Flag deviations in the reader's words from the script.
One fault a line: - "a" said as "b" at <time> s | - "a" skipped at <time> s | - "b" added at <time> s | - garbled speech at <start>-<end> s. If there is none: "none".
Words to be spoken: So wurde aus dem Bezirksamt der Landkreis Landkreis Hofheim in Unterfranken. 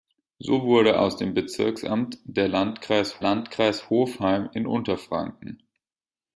none